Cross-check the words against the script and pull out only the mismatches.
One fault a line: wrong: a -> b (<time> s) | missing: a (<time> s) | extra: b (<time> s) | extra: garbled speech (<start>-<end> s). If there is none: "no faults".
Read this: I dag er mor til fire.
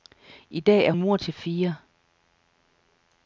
no faults